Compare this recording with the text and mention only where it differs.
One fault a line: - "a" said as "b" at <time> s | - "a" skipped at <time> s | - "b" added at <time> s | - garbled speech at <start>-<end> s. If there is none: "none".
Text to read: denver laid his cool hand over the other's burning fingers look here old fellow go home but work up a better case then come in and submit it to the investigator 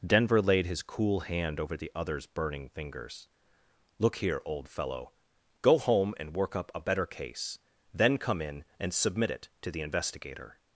- "but" said as "and" at 6.2 s